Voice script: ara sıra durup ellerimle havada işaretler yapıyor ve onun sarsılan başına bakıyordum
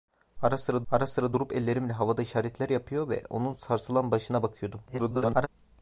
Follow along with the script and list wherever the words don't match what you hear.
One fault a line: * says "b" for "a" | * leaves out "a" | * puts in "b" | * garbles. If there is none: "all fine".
* puts in "ara sıra"
* garbles